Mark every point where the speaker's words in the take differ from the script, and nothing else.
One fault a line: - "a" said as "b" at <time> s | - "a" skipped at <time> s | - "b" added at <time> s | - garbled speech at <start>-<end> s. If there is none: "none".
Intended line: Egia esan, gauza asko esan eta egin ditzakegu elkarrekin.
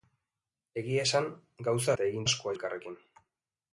- "asko esan" skipped at 2.0 s
- "ditzakegu" said as "asko" at 2.3 s